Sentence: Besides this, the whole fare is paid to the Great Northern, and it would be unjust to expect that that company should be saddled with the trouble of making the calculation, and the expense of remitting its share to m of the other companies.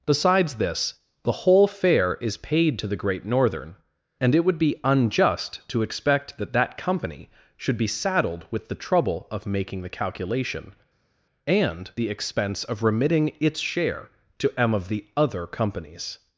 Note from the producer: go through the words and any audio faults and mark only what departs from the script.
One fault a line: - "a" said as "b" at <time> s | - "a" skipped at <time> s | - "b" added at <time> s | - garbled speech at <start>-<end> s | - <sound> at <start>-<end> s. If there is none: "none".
none